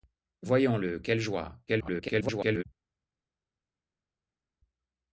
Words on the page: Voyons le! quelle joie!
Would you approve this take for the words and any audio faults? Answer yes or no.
no